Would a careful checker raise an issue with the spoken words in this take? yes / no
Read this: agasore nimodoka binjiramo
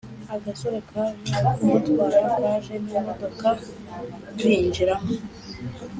yes